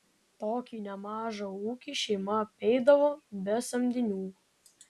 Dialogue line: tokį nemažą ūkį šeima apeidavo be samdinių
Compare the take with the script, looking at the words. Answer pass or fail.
pass